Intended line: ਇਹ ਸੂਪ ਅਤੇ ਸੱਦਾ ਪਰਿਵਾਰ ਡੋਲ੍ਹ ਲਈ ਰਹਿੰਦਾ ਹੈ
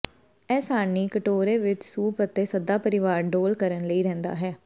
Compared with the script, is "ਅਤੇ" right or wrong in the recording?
right